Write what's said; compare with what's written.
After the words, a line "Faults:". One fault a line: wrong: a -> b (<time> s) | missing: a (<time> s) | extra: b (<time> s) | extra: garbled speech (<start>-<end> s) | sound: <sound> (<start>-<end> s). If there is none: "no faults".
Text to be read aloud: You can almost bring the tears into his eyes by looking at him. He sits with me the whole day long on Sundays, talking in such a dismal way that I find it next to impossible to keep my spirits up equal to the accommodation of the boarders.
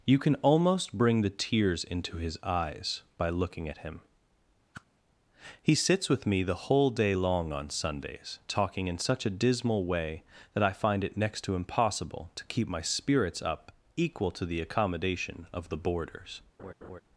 You can almost bring the tears into his eyes by looking at him. He sits with me the whole day long on Sundays, talking in such a dismal way that I find it next to impossible to keep my spirits up equal to the accommodation of the boarders.
Faults:
sound: whoosh (4.7-4.9 s)
sound: laugh (16.6-17.0 s)